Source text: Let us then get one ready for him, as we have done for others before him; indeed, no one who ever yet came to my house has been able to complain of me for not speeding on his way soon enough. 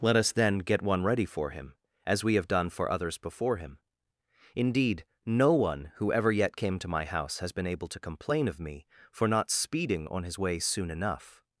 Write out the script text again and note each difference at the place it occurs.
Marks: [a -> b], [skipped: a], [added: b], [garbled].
Let us then get one ready for him, as we have done for others before him; indeed, no one who ever yet came to my house has been able to complain of me for not speeding on his way soon enough.